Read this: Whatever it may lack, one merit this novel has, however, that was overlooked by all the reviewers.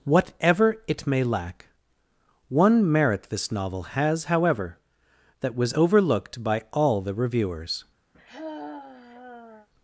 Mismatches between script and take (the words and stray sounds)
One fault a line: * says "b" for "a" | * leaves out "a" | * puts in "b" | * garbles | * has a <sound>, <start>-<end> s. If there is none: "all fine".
* has a sigh, 8.1-9.7 s